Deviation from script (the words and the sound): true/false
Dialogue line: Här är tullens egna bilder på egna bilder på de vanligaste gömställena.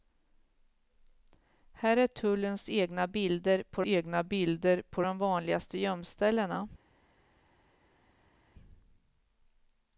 false